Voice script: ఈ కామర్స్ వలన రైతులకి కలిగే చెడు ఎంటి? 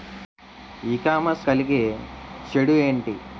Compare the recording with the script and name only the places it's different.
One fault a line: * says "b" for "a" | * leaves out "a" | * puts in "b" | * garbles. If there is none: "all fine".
* leaves out "వలన రైతులకి"